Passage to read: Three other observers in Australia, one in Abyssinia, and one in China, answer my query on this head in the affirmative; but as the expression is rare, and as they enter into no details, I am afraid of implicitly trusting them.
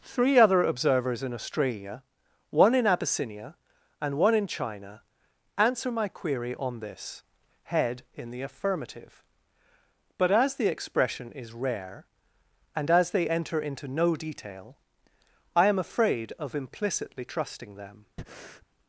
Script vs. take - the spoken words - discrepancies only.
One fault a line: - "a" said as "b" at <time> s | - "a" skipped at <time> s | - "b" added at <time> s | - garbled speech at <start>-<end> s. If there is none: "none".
- "details" said as "detail" at 14.2 s